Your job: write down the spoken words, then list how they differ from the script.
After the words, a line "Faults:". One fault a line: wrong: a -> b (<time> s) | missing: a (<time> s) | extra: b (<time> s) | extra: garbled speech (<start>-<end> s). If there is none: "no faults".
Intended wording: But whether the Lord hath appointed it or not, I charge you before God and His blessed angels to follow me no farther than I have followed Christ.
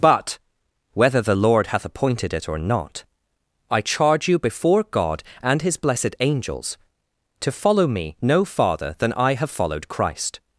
But whether the Lord hath appointed it or not, I charge you before God and His blessed angels to follow me no farther than I have followed Christ.
Faults:
no faults